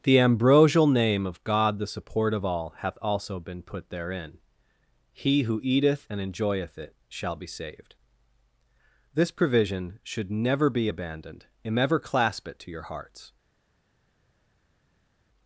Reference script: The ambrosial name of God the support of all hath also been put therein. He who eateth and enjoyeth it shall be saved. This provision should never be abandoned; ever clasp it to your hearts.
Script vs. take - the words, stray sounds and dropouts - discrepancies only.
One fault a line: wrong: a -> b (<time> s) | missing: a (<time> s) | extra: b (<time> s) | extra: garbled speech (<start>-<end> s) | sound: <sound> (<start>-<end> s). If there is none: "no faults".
extra: and (11.6 s)